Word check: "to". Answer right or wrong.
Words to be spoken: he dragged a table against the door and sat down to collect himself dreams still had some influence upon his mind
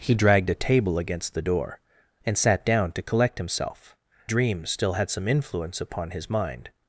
right